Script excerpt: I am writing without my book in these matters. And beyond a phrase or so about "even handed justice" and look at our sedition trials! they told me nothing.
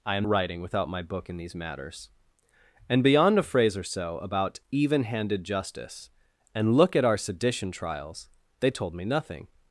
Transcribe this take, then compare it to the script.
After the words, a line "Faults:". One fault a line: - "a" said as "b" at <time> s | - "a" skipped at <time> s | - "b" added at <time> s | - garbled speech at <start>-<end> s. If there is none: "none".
I am writing without my book in these matters. And beyond a phrase or so about "even handed justice" and look at our sedition trials! they told me nothing.
Faults:
none